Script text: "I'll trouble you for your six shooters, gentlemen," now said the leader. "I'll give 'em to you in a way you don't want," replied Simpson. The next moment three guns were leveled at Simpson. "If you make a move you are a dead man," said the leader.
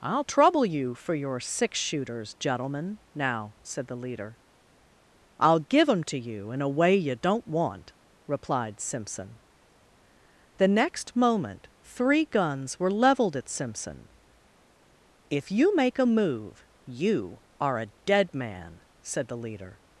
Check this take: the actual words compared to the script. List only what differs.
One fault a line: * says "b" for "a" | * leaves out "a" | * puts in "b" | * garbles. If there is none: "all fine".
all fine